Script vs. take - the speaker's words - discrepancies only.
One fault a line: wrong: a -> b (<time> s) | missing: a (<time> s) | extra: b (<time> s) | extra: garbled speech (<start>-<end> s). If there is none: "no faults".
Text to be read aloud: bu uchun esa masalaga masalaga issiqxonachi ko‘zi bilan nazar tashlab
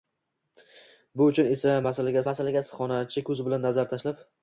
no faults